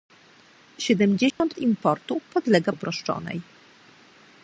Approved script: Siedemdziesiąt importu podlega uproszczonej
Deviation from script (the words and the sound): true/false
true